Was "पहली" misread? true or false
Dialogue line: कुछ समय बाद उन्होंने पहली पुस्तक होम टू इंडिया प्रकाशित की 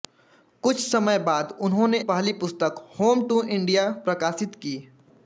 false